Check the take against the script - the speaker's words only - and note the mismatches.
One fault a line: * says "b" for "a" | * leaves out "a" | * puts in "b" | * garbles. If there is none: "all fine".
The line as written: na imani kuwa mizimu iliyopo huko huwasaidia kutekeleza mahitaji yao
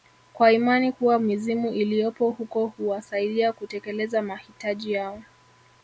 * says "kwa" for "na"